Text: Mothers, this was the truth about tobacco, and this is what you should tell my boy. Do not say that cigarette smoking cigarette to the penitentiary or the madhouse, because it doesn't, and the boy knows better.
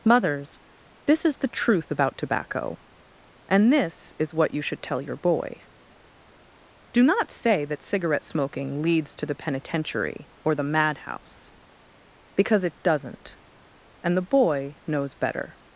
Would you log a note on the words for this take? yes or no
yes